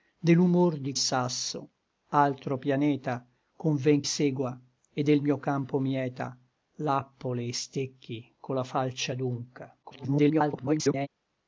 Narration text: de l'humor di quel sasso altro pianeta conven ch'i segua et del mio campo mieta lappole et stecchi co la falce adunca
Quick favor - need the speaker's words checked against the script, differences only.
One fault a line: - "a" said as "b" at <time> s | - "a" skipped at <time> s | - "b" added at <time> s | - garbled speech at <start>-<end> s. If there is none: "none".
- "quel" skipped at 0.9 s
- "ch'i" skipped at 4.0 s
- garbled speech at 9.8-11.1 s